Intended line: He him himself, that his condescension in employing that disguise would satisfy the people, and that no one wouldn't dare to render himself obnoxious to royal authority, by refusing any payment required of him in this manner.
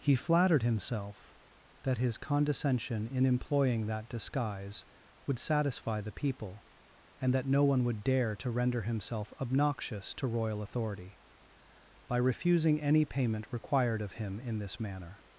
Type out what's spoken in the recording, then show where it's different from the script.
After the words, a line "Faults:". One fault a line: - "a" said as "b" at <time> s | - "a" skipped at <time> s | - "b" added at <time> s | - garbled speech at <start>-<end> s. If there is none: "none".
He flattered himself, that his condescension in employing that disguise would satisfy the people, and that no one would dare to render himself obnoxious to royal authority, by refusing any payment required of him in this manner.
Faults:
- "him" said as "flattered" at 0.1 s
- "wouldn't" said as "would" at 7.8 s